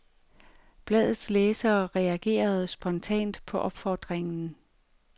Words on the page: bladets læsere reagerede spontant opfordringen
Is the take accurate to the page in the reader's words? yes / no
no